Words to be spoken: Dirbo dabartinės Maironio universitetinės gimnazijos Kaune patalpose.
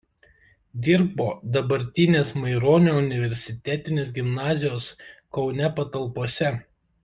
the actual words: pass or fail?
pass